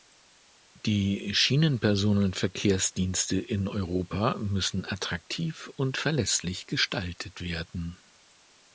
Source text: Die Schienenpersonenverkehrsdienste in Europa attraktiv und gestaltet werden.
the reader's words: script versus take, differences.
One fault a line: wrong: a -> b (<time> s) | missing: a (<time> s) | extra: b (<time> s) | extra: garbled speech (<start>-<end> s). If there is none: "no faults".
extra: müssen (4.4 s)
extra: verlässlich (6.0 s)